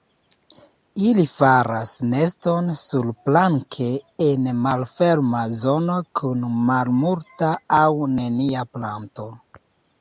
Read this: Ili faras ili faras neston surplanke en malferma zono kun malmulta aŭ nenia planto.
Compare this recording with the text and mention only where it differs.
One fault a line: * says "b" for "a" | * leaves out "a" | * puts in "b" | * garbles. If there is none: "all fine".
* leaves out "ili faras"